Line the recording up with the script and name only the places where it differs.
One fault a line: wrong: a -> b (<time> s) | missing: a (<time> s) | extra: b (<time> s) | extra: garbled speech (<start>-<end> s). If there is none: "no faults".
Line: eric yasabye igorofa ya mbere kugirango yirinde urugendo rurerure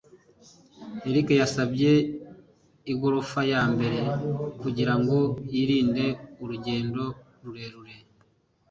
no faults